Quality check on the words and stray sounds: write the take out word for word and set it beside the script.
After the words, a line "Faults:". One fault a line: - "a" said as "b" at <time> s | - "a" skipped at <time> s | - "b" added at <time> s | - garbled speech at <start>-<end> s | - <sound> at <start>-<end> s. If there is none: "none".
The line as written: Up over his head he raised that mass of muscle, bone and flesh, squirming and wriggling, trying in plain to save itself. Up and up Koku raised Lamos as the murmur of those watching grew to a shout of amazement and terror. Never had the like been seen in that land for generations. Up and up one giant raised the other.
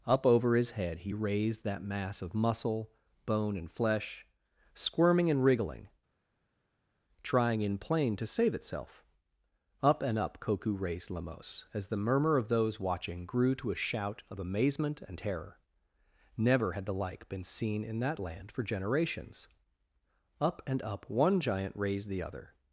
Up over his head he raised that mass of muscle, bone and flesh, squirming and wriggling, trying in plain to save itself. Up and up Koku raised Lamos as the murmur of those watching grew to a shout of amazement and terror. Never had the like been seen in that land for generations. Up and up one giant raised the other.
Faults:
none